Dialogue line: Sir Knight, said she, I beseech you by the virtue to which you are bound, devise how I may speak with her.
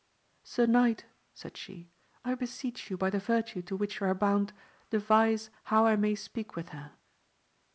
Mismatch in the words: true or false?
false